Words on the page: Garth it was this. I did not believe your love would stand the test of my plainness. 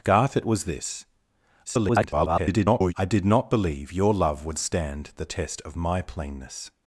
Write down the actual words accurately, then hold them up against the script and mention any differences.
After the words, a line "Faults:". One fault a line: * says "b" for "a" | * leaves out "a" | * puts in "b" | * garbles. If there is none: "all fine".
Garth it was this. [garbled] I did not believe your love would stand the test of my plainness.
Faults:
* garbles